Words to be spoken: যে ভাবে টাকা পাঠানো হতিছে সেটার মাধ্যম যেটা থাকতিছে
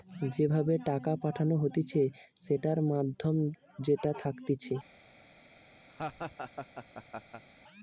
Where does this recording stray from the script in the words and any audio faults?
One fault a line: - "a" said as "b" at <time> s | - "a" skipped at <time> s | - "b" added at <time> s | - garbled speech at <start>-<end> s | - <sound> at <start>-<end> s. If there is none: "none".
- laugh at 5.9-7.4 s